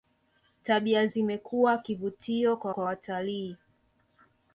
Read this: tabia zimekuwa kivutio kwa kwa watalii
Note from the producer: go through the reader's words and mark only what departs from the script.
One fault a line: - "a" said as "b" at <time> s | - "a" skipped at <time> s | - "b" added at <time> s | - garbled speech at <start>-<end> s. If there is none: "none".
none